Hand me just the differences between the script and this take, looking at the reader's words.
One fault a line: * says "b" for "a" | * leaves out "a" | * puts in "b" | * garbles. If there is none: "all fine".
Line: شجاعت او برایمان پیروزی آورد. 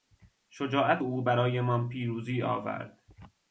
all fine